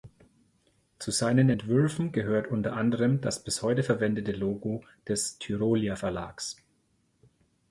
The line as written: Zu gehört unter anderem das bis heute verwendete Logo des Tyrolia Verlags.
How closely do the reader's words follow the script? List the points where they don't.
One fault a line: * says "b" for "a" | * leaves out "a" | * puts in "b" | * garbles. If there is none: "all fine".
* puts in "seinen Entwürfen"